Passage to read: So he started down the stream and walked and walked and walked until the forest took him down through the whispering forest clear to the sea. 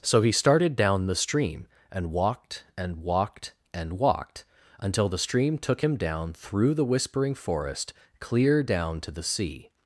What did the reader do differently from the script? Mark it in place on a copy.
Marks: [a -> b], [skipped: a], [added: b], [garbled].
So he started down the stream and walked and walked and walked until the [forest -> stream] took him down through the whispering forest clear [added: down] to the sea.